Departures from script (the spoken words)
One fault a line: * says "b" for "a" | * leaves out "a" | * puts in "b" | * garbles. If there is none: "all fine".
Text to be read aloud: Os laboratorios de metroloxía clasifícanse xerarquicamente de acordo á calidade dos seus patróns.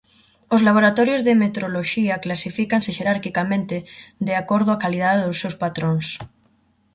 all fine